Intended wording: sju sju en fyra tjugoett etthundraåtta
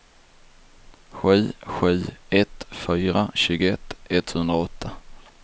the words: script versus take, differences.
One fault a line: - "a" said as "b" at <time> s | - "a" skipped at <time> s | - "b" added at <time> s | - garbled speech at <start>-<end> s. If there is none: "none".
- "en" said as "ett" at 2.3 s